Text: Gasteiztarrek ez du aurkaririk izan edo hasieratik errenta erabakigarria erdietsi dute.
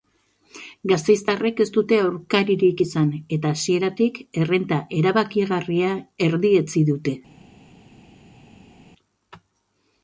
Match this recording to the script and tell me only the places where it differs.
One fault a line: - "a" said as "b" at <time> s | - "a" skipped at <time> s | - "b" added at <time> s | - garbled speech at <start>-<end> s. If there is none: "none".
- "du" said as "dute" at 1.8 s
- "edo" said as "eta" at 3.4 s